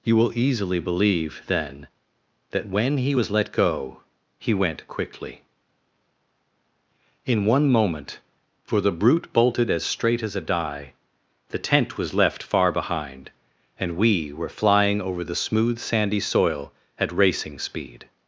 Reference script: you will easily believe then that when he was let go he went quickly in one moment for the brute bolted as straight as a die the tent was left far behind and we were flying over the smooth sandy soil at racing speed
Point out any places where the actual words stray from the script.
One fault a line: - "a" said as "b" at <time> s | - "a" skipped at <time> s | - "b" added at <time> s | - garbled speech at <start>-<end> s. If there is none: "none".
none